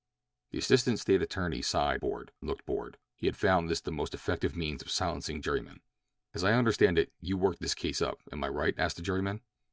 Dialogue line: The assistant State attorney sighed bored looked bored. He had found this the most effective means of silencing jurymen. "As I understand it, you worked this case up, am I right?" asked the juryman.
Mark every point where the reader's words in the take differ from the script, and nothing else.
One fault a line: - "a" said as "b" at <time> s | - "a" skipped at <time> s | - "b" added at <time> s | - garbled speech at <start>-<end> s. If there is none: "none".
none